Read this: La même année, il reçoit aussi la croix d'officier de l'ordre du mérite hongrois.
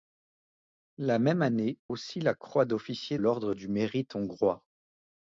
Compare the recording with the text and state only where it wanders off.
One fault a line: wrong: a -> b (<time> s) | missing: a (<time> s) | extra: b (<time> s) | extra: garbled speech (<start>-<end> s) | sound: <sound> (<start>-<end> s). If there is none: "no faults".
missing: il reçoit (1.8 s)
missing: de (3.2 s)